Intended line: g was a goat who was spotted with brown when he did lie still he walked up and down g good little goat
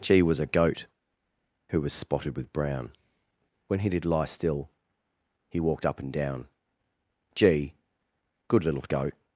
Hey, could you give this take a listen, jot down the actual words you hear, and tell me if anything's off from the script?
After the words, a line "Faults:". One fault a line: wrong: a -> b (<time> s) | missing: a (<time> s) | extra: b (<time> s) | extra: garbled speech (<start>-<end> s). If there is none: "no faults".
g was a goat who was spotted with brown when he did lie still he walked up and down g good little goat
Faults:
no faults